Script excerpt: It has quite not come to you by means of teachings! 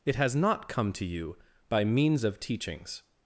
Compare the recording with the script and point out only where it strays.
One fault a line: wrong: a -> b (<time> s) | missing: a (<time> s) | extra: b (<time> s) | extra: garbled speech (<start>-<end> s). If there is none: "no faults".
missing: quite (0.3 s)